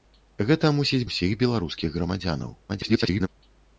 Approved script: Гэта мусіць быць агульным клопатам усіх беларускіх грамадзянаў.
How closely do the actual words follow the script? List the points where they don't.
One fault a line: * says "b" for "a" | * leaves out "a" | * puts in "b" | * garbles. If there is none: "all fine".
* leaves out "быць агульным клопатам"
* garbles